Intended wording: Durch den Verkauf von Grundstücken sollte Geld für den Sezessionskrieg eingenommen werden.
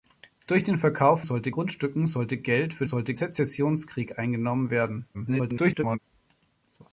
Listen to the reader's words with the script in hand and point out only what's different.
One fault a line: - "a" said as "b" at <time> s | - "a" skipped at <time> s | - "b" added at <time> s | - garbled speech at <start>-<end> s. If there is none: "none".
- "von" said as "sollte" at 1.2 s
- "den" said as "sollte" at 2.8 s
- garbled speech at 5.1-6.0 s